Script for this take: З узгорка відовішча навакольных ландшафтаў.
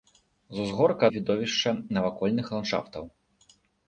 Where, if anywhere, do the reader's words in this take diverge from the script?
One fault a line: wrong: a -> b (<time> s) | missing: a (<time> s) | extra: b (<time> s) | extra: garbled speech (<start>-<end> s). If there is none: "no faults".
no faults